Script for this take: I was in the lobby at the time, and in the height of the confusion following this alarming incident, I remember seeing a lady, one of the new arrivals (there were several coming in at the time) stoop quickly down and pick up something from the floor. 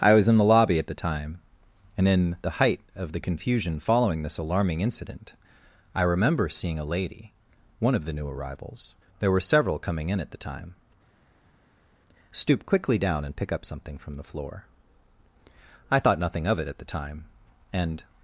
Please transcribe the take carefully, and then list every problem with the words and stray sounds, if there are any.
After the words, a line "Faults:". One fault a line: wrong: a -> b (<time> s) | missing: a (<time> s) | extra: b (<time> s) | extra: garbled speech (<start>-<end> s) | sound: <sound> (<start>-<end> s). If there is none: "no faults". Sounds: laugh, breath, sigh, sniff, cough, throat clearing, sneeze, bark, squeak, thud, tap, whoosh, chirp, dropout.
I was in the lobby at the time, and in the height of the confusion following this alarming incident, I remember seeing a lady, one of the new arrivals (there were several coming in at the time) stoop quickly down and pick up something from the floor. I thought nothing of it at the time, and
Faults:
extra: I thought nothing of it at the time and (15.9 s)